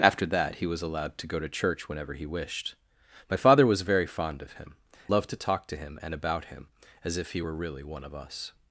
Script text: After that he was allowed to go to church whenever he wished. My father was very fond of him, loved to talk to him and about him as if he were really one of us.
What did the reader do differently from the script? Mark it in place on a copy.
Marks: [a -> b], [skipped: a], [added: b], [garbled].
After that he was allowed to go to church whenever he wished. My father was very fond of him, loved to talk to him and about him as if he were really one of us.